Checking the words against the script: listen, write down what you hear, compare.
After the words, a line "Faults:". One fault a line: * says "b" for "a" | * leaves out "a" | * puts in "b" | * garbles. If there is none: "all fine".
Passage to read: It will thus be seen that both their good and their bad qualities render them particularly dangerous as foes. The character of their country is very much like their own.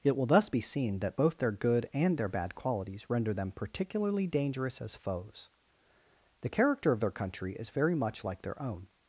It will thus be seen that both their good and their bad qualities render them particularly dangerous as foes. The character of their country is very much like their own.
Faults:
all fine